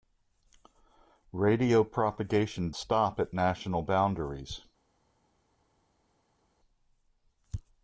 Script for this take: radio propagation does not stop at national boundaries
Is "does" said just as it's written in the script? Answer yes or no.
no